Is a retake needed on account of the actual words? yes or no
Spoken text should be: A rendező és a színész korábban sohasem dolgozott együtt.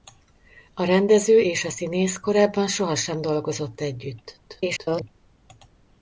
yes